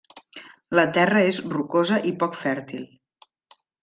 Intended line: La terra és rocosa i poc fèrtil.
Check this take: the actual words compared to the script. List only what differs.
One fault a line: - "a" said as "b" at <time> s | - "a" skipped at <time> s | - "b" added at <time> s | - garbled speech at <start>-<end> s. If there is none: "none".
none